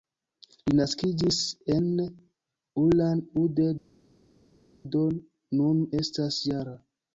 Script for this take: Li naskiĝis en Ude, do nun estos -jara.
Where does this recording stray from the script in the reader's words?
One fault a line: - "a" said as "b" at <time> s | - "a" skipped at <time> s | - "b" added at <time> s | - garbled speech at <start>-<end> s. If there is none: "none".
- "Ulan" added at 2.8 s
- "estos" said as "estas" at 6.0 s